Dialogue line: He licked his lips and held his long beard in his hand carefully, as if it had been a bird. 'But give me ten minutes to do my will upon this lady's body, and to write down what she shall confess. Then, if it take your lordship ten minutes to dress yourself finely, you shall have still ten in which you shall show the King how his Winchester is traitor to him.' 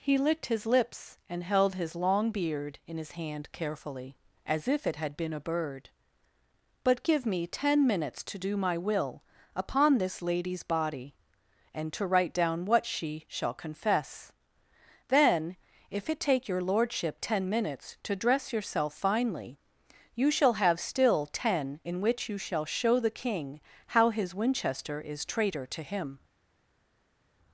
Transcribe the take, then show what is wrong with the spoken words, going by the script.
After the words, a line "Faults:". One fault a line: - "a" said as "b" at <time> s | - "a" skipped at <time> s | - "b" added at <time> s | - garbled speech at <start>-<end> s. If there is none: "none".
He licked his lips and held his long beard in his hand carefully, as if it had been a bird. 'But give me ten minutes to do my will upon this lady's body, and to write down what she shall confess. Then, if it take your lordship ten minutes to dress yourself finely, you shall have still ten in which you shall show the King how his Winchester is traitor to him.'
Faults:
none